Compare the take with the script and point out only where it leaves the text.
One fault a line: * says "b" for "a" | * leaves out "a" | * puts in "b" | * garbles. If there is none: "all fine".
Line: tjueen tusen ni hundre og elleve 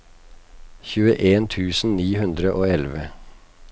all fine